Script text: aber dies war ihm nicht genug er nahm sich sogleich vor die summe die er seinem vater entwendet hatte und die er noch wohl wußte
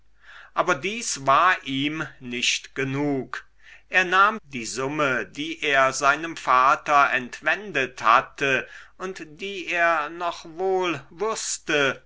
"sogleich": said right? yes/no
no